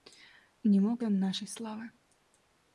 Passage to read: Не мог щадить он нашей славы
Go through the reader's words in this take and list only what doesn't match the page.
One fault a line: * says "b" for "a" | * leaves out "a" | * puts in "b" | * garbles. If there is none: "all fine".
* leaves out "щадить"